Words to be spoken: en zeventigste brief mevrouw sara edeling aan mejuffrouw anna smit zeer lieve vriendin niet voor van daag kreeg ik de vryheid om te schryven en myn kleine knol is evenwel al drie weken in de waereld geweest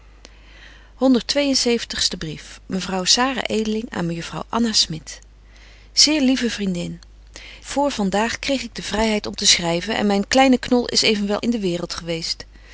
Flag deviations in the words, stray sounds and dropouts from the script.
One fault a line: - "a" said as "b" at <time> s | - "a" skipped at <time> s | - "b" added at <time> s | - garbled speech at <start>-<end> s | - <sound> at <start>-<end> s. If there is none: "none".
- "niet" skipped at 7.0 s
- "al drie weken" skipped at 11.4 s